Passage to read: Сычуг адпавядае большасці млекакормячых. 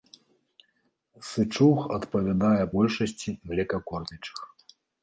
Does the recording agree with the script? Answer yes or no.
yes